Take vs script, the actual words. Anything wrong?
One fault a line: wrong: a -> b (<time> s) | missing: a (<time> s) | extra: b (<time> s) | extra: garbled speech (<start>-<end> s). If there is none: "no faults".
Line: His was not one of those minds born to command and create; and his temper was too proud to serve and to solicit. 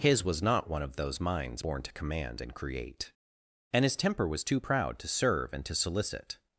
no faults